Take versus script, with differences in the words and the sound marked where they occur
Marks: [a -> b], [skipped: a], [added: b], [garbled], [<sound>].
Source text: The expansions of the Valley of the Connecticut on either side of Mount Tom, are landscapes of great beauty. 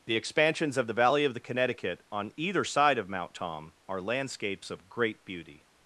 The expansions of the Valley of the Connecticut on either side of Mount Tom, are landscapes of great beauty.